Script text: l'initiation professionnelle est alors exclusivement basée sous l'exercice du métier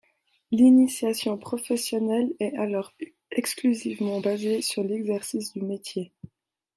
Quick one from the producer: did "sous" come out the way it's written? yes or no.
no